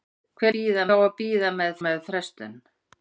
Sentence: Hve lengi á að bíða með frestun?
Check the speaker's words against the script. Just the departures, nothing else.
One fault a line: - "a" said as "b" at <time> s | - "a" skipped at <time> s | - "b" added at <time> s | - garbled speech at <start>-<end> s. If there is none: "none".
- "lengi" said as "bíða" at 0.6 s
- "með" added at 1.9 s